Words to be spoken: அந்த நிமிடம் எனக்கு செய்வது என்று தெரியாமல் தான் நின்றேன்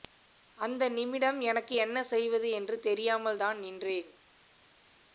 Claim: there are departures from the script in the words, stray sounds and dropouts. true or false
true